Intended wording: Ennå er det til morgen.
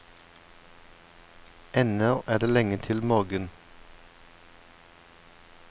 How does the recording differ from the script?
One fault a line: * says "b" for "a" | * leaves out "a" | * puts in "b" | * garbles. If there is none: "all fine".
* puts in "lenge"